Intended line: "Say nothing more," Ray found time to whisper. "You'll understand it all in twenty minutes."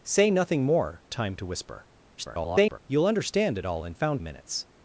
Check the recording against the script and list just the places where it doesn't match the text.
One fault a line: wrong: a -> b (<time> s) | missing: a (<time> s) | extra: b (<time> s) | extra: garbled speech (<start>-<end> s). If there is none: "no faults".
missing: Ray found (1.0 s)
extra: garbled speech (2.2-2.8 s)
wrong: twenty -> found (3.9 s)